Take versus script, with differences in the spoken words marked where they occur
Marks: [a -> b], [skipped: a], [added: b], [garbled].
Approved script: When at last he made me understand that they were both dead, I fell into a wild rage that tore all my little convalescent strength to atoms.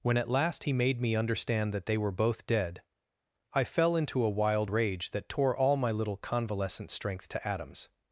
When at last he made me understand that they were both dead, I fell into a wild rage that tore all my little convalescent strength to atoms.